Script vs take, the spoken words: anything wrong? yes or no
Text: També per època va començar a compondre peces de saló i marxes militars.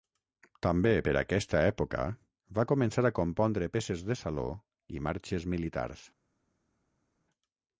yes